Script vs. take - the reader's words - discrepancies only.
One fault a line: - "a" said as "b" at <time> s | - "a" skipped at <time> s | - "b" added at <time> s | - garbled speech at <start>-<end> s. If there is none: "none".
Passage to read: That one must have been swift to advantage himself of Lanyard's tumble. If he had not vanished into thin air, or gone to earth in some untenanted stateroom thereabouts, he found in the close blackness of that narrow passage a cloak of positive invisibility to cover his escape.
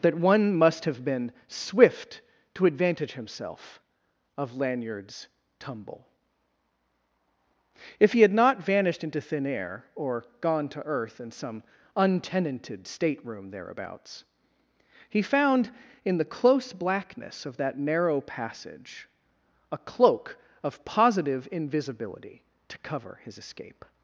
none